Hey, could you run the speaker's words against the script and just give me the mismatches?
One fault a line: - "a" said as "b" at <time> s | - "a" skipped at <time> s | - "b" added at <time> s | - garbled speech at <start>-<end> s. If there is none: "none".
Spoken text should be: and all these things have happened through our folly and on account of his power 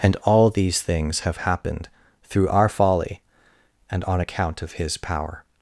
none